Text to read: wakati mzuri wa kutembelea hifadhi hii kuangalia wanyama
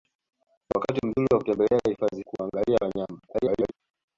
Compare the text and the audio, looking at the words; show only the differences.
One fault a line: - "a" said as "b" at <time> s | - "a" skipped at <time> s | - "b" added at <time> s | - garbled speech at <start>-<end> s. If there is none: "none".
- "hii" skipped at 2.2 s
- garbled speech at 3.3-3.7 s